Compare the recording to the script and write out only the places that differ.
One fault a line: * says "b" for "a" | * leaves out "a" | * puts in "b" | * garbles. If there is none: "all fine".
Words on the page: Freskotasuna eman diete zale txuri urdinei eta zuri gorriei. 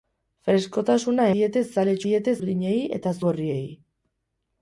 * leaves out "eman"
* says "diete" for "txuri"
* leaves out "zuri"